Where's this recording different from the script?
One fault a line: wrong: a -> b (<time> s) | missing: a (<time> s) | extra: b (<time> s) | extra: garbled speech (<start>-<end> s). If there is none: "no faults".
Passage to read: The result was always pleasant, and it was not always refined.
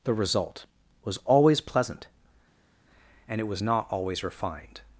no faults